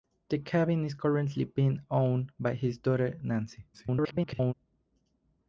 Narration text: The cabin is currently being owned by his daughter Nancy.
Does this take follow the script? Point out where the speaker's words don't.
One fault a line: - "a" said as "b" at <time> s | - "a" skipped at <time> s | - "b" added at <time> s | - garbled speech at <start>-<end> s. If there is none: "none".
- garbled speech at 3.7-4.5 s